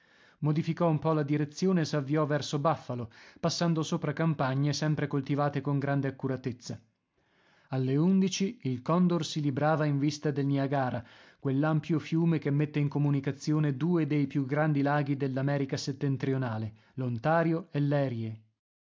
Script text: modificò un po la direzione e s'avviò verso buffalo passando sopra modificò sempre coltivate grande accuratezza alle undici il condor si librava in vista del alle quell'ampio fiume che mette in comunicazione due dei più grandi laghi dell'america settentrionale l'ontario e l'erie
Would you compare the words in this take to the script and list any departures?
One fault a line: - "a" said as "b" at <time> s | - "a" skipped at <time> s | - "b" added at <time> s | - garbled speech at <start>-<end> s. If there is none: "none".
- "modificò" said as "campagne" at 4.1 s
- "con" added at 5.6 s
- "alle" said as "niagara" at 10.5 s